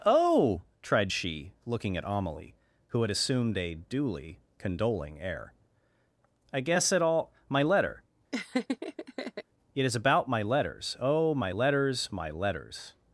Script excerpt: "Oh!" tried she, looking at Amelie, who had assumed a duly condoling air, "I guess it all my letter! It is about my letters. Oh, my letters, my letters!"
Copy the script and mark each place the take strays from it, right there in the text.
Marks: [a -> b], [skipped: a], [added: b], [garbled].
"Oh!" tried she, looking at Amelie, who had assumed a duly condoling air, "I guess it all my letter! It is about my letters. Oh, my letters, my letters!"